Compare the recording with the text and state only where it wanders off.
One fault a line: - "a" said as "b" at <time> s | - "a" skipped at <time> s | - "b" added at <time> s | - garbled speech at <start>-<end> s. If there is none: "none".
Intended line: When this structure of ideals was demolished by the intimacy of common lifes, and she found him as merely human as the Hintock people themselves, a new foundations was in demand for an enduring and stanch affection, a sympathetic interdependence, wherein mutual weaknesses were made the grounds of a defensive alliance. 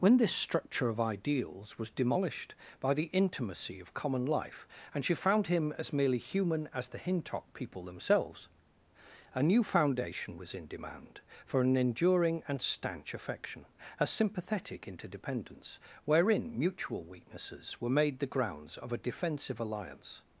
- "lifes" said as "life" at 4.2 s
- "foundations" said as "foundation" at 9.6 s